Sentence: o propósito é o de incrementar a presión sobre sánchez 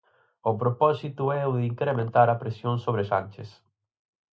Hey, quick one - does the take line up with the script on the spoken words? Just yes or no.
yes